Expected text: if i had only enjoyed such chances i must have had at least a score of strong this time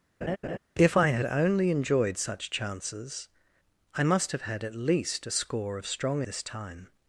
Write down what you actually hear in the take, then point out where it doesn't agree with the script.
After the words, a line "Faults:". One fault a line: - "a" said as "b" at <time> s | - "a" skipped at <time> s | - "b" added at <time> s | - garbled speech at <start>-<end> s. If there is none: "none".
if i had only enjoyed such chances i must have had at least a score of strong this time
Faults:
none